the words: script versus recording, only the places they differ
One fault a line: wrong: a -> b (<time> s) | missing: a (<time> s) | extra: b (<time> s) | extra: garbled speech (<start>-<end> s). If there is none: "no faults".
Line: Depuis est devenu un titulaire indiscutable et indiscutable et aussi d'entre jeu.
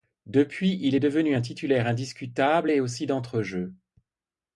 extra: il (0.8 s)
missing: indiscutable et (2.8 s)